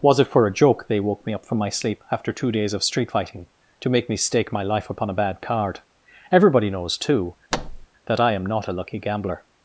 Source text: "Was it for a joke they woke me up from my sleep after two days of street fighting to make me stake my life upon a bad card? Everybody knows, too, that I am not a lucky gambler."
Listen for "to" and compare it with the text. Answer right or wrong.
right